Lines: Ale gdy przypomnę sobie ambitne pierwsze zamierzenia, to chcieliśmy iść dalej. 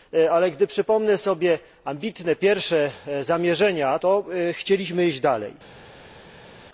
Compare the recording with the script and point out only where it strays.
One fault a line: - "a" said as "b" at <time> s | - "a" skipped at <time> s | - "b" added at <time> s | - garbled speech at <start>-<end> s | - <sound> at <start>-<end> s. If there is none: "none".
none